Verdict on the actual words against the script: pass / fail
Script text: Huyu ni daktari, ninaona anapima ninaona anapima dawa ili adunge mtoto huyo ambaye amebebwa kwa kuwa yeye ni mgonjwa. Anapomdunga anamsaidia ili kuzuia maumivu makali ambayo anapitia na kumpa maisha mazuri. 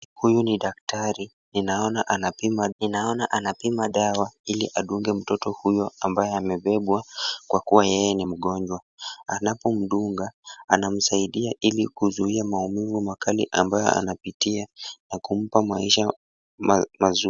pass